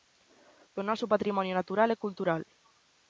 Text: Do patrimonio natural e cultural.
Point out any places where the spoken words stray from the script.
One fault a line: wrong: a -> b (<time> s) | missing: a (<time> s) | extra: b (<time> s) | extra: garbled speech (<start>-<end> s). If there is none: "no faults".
extra: noso (0.9 s)